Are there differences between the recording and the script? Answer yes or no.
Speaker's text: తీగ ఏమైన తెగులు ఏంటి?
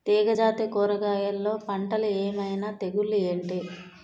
yes